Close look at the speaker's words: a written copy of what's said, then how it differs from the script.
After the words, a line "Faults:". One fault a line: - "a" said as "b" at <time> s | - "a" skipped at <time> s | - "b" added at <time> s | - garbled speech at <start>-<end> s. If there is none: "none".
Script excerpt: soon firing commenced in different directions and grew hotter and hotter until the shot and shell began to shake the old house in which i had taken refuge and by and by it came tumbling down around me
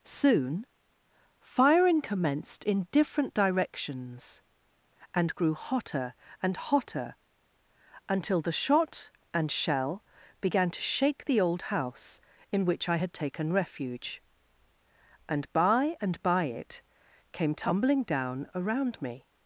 soon firing commenced in different directions and grew hotter and hotter until the shot and shell began to shake the old house in which i had taken refuge and by and by it came tumbling down around me
Faults:
none